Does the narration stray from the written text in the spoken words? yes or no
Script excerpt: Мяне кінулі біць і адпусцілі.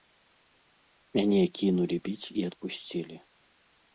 no